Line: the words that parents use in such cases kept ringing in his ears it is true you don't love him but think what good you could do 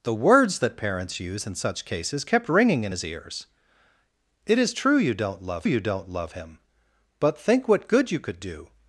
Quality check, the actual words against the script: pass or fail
fail